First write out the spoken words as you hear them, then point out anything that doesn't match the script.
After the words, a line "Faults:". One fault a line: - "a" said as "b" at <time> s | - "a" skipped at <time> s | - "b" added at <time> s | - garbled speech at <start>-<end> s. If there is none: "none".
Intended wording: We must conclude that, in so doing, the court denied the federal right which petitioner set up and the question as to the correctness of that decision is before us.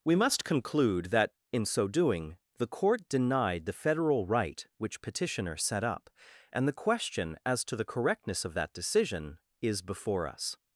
We must conclude that, in so doing, the court denied the federal right which petitioner set up and the question as to the correctness of that decision is before us.
Faults:
none